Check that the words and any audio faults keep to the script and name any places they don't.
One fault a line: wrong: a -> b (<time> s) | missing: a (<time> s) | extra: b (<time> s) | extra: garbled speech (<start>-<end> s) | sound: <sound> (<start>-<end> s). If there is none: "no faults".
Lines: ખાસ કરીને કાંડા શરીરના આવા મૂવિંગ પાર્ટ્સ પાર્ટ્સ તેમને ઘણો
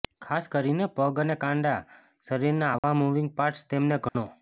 extra: પગ અને (0.9 s)
sound: dropout (2.8-2.8 s)
missing: પાર્ટ્સ (3.7 s)
sound: dropout (4.1-4.1 s)